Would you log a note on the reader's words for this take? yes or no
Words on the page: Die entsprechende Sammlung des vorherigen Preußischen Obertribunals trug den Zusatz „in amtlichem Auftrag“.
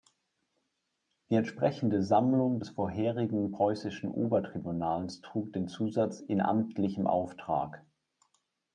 no